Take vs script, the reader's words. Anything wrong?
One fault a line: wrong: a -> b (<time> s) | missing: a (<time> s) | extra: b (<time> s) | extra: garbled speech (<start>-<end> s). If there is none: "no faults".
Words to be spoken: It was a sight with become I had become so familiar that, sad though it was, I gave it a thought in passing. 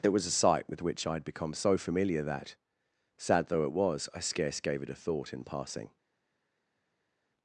wrong: become -> which (0.8 s)
extra: scarce (4.2 s)